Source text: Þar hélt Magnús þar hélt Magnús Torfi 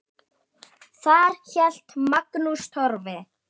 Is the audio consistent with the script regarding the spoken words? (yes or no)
no